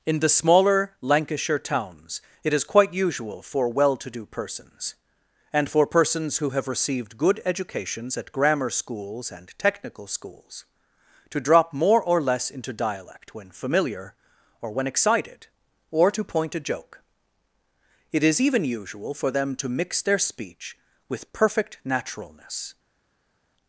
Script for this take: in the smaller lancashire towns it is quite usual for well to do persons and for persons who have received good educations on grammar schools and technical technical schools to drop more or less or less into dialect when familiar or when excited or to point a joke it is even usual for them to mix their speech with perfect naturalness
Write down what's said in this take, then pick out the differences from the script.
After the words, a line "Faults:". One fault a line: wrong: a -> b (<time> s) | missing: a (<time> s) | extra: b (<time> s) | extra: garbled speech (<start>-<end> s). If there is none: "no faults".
in the smaller lancashire towns it is quite usual for well to do persons and for persons who have received good educations at grammar schools and technical schools to drop more or less into dialect when familiar or when excited or to point a joke it is even usual for them to mix their speech with perfect naturalness
Faults:
wrong: on -> at (8.2 s)
missing: technical (10.1 s)
missing: or less (12.5 s)